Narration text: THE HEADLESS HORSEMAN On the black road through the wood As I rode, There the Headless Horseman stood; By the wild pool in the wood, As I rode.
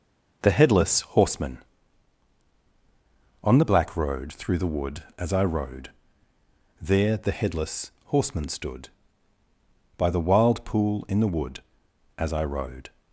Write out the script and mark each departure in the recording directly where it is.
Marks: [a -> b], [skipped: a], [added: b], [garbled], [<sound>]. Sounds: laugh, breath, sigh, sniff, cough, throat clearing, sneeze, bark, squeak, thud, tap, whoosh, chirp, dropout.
THE HEADLESS HORSEMAN On the black road through the wood As I rode, There the Headless Horseman stood; By the wild pool in the wood, As I rode.